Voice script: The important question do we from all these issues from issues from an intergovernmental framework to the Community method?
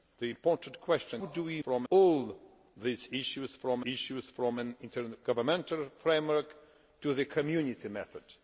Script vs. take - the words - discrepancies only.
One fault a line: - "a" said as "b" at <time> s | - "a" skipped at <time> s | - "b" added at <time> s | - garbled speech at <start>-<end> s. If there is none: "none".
none